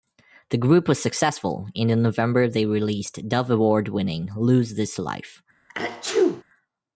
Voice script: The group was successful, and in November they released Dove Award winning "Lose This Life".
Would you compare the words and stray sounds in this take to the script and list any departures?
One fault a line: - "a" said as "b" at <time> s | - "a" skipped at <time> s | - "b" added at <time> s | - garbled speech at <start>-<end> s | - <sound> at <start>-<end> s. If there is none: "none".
- sneeze at 5.7-6.4 s